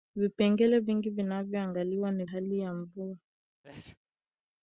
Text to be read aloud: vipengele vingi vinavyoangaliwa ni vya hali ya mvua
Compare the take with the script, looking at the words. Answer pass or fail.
fail